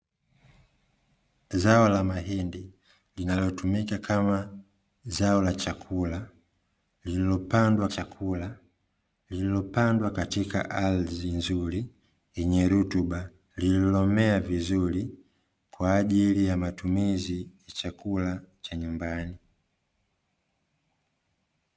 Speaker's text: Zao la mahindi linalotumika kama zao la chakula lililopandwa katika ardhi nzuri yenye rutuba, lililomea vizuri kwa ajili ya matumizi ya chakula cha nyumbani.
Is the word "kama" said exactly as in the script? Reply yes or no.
yes